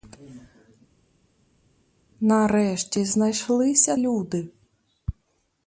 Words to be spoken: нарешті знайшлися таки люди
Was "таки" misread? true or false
true